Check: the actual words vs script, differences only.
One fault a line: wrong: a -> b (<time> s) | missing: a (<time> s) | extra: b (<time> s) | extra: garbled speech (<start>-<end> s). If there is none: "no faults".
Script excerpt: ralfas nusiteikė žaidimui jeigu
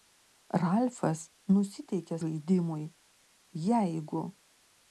no faults